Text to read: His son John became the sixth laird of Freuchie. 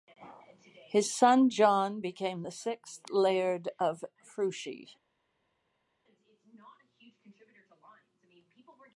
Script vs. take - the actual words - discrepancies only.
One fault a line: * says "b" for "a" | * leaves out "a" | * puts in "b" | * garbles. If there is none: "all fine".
all fine